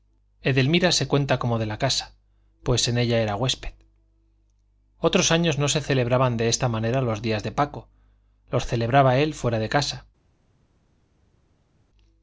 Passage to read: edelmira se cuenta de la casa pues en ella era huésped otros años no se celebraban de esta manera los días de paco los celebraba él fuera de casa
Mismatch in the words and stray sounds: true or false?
true